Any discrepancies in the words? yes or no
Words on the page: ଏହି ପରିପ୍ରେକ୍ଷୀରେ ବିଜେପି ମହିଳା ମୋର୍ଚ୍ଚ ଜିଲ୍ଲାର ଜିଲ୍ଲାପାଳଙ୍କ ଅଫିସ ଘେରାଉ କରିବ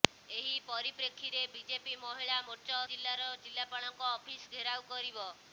no